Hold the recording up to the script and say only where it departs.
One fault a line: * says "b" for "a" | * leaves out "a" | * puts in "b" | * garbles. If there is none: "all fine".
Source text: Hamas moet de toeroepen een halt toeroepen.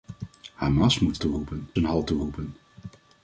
all fine